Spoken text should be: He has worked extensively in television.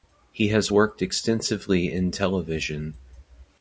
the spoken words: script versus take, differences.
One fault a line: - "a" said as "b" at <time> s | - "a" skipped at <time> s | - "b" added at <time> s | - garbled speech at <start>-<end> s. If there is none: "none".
none